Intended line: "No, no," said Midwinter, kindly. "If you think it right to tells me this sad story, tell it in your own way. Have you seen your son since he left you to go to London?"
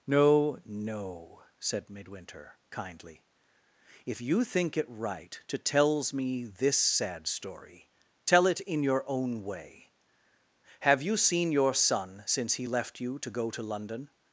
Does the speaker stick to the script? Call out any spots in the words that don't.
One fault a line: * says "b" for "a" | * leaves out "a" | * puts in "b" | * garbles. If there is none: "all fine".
all fine